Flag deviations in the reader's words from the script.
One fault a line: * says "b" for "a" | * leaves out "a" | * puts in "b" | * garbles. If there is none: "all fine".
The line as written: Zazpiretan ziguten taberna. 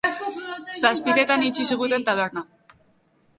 * puts in "itxi"